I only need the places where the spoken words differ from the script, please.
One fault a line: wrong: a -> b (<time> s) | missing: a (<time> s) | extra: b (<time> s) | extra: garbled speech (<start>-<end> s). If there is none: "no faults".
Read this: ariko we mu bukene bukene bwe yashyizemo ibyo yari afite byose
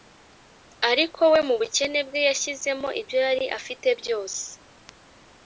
missing: bukene (2.0 s)